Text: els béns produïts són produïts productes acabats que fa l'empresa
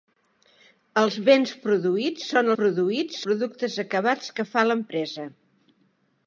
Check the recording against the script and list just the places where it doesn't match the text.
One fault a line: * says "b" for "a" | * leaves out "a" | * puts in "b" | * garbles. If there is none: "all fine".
all fine